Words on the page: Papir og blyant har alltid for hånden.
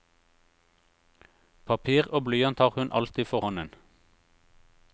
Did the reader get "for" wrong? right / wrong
right